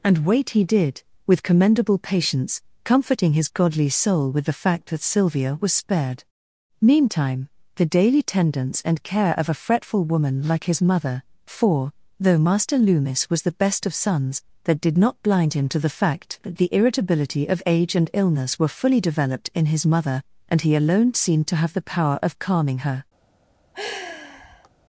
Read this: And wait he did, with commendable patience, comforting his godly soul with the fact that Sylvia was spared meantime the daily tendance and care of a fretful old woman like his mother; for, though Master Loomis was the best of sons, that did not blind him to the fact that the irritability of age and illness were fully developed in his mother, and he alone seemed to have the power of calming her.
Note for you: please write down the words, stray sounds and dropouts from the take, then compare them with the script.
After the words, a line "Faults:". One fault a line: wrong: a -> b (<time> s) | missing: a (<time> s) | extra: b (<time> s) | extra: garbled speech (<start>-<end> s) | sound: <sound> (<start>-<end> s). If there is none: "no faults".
And wait he did, with commendable patience, comforting his godly soul with the fact that Sylvia was spared meantime the daily tendance and care of a fretful woman like his mother; for, though Master Loomis was the best of sons, that did not blind him to the fact that the irritability of age and illness were fully developed in his mother, and he alone seemed to have the power of calming her.
Faults:
missing: old (10.0 s)
sound: sigh (23.7-24.7 s)